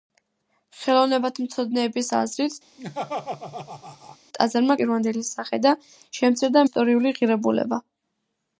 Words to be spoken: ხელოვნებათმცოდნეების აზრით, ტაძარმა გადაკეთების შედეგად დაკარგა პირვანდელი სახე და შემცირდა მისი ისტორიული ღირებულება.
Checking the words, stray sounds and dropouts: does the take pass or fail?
fail